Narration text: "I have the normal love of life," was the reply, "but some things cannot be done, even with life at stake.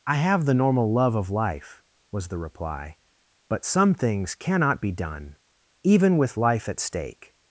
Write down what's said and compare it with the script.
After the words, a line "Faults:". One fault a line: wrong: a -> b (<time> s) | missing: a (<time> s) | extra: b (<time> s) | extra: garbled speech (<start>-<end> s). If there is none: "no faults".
"I have the normal love of life," was the reply, "but some things cannot be done, even with life at stake.
Faults:
no faults